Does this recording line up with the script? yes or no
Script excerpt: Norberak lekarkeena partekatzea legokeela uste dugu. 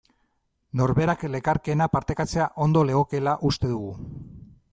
no